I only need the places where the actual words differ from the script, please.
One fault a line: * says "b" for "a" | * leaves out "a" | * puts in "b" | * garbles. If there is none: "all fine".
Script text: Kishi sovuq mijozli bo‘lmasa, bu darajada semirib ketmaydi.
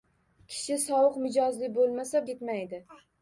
* leaves out "bu darajada semirib"